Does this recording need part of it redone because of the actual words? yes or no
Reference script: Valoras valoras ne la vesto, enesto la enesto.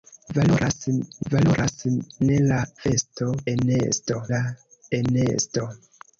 no